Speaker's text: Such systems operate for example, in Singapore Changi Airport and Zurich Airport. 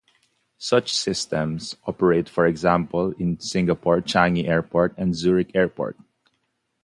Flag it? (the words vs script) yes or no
no